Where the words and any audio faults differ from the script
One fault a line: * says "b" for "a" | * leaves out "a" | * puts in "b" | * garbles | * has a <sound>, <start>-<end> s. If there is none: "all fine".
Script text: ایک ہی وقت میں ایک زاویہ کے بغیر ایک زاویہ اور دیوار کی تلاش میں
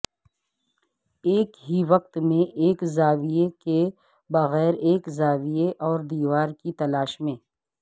all fine